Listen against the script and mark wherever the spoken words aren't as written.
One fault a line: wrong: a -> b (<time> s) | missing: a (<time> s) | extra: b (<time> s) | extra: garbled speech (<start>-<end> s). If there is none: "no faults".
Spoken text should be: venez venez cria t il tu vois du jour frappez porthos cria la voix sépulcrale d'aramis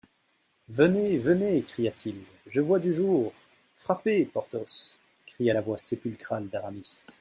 wrong: tu -> je (2.5 s)